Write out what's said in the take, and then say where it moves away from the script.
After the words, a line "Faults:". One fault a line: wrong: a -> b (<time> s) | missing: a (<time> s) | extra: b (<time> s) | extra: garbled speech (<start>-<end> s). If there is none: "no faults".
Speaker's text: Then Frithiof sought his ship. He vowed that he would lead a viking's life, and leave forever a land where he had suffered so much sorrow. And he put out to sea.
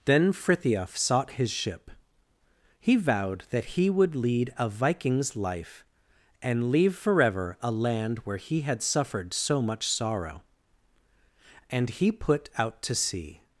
Then Frithiof sought his ship. He vowed that he would lead a viking's life, and leave forever a land where he had suffered so much sorrow. And he put out to sea.
Faults:
no faults